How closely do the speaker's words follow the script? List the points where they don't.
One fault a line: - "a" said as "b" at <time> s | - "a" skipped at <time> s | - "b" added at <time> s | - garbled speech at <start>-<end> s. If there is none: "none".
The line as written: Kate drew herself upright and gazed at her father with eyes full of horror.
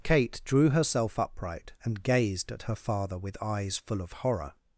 none